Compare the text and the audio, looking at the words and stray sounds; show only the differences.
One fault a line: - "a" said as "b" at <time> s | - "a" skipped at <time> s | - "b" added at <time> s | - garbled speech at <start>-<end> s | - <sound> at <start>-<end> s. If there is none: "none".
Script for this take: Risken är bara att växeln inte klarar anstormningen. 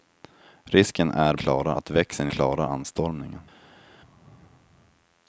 - "bara" said as "klarar" at 1.3 s
- "inte" skipped at 2.3 s